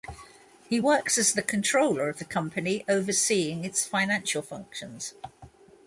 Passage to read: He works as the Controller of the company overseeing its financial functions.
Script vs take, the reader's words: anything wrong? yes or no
no